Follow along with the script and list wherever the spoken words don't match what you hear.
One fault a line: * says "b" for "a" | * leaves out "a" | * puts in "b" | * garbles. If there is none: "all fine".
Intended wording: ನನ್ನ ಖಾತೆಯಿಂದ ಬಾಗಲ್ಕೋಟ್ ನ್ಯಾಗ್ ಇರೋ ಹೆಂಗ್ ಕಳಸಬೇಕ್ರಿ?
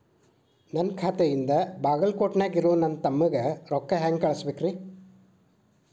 * puts in "ನನ್ನ ತಮ್ಮಗ ರೊಕ್ಕ"